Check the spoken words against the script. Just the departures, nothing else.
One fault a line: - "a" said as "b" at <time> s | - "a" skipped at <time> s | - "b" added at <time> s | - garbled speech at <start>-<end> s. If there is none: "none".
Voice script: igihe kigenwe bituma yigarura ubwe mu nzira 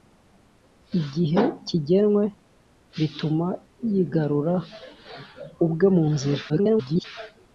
- garbled speech at 6.5-7.0 s